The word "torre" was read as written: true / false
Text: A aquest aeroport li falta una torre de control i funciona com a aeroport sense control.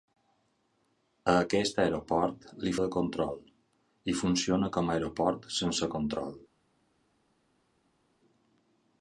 false